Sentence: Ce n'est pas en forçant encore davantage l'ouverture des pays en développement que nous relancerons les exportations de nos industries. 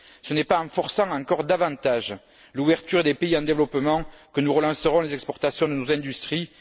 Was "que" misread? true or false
false